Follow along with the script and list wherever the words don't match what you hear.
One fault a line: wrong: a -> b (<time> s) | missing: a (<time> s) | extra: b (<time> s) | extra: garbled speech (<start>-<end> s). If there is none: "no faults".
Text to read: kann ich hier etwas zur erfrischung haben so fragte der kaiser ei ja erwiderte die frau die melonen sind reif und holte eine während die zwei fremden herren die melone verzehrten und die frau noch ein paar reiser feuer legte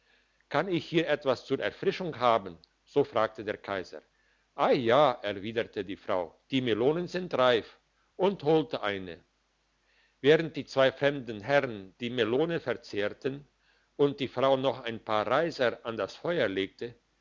extra: an das (15.8 s)